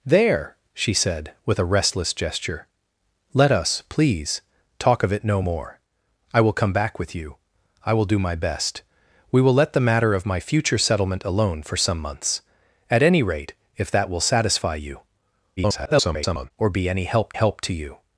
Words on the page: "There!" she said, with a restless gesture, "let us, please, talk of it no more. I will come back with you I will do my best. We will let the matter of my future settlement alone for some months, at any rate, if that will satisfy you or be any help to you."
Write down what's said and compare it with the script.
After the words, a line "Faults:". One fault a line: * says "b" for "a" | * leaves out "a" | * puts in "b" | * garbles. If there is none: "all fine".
"There!" she said, with a restless gesture, "let us, please, talk of it no more. I will come back with you I will do my best. We will let the matter of my future settlement alone for some months, at any rate, if that will satisfy you [garbled] or be any help help to you."
Faults:
* garbles
* puts in "help"